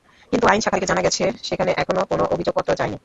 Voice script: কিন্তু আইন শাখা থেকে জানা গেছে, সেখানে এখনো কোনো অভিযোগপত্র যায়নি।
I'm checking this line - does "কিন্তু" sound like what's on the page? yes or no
yes